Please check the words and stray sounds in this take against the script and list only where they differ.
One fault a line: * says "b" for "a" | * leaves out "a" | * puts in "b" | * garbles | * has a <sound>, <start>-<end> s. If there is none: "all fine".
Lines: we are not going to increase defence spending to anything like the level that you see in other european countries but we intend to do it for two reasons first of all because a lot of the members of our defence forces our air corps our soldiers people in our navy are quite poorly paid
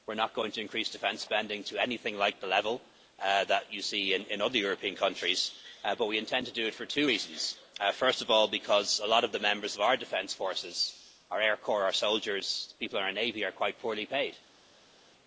all fine